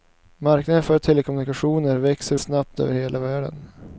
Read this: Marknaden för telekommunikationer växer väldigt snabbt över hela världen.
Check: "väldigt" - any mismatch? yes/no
yes